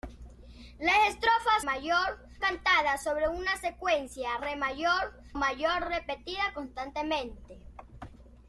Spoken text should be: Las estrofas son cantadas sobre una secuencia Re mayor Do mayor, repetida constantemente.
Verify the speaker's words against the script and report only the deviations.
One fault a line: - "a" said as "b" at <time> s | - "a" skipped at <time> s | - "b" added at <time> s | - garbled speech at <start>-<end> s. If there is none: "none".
- "son" said as "mayor" at 1.6 s
- "Do" skipped at 5.2 s